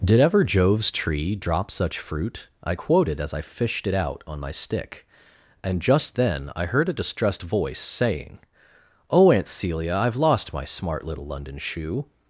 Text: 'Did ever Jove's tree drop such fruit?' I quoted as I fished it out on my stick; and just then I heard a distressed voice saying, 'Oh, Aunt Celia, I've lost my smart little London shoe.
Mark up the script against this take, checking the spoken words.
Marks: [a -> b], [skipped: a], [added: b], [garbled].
'Did ever Jove's tree drop such fruit?' I quoted as I fished it out on my stick; and just then I heard a distressed voice saying, 'Oh, Aunt Celia, I've lost my smart little London shoe.